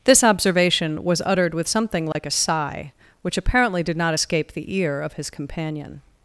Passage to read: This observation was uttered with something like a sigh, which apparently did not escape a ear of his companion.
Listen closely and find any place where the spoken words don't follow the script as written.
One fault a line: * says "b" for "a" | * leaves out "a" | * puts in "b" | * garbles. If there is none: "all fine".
* says "the" for "a"